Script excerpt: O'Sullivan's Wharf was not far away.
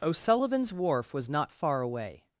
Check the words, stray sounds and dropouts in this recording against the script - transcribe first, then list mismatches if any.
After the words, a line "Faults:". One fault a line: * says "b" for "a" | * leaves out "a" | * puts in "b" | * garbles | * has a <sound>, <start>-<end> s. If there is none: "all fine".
O'Sullivan's Wharf was not far away.
Faults:
all fine